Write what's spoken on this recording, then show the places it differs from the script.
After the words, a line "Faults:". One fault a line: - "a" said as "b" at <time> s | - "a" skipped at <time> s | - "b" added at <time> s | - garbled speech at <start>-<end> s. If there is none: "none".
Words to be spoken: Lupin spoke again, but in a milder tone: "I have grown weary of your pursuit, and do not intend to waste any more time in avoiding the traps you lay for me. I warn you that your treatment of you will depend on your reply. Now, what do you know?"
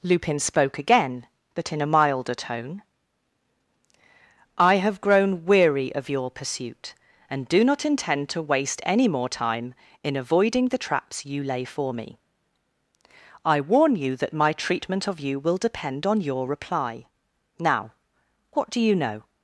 Lupin spoke again, but in a milder tone: "I have grown weary of your pursuit, and do not intend to waste any more time in avoiding the traps you lay for me. I warn you that my treatment of you will depend on your reply. Now, what do you know?"
Faults:
- "your" said as "my" at 14.3 s